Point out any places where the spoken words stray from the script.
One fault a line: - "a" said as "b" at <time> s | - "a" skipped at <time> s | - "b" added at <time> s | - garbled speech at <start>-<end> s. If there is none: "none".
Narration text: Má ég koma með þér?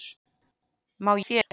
- "ég koma með" skipped at 1.1 s